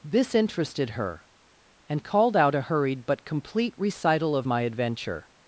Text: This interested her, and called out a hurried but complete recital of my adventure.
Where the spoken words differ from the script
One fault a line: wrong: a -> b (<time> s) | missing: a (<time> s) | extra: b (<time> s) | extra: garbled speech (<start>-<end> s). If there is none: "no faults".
no faults